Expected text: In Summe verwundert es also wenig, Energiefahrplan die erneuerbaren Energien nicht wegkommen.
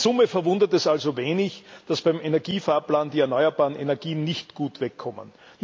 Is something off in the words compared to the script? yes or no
yes